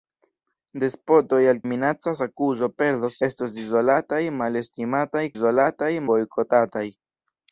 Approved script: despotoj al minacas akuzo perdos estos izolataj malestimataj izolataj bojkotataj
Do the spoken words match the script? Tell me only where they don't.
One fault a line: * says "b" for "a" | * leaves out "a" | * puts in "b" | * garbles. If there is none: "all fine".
all fine